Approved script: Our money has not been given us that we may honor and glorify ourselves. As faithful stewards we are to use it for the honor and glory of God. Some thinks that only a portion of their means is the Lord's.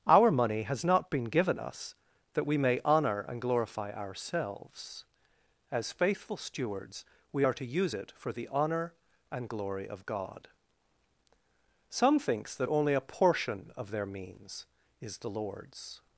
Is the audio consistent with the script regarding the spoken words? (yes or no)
yes